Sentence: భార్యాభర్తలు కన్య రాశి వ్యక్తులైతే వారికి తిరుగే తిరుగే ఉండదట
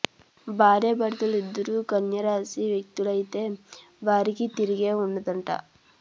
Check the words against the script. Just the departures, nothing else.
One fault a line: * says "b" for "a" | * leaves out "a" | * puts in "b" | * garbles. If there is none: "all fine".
* puts in "ఇద్దరూ"
* leaves out "తిరుగే"